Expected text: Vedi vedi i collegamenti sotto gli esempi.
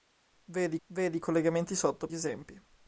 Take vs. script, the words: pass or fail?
pass